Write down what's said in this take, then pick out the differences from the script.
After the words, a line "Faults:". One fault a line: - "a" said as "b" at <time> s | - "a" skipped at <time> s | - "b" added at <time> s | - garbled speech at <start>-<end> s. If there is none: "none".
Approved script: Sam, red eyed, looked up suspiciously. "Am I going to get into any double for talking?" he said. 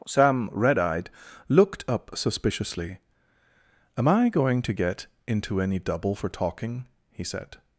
Sam, red eyed, looked up suspiciously. "Am I going to get into any double for talking?" he said.
Faults:
none